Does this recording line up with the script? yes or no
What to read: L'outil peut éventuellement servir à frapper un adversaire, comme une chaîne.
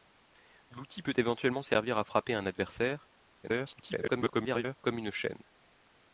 no